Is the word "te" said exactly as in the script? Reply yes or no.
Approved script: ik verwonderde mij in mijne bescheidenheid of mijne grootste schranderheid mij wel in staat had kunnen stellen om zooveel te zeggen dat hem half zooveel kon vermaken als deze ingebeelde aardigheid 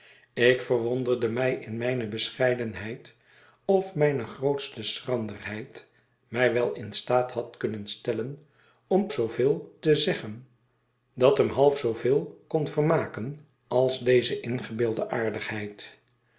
yes